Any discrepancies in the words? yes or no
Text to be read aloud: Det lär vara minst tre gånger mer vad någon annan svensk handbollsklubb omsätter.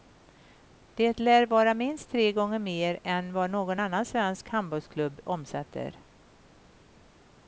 yes